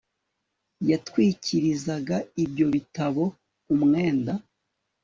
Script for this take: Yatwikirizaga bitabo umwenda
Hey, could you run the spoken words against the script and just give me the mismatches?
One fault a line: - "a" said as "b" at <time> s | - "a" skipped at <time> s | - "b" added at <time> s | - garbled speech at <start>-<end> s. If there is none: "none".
- "ibyo" added at 2.4 s